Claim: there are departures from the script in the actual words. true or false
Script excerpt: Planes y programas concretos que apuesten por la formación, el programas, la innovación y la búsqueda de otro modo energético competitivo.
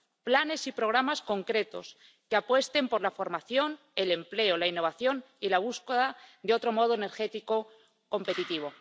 true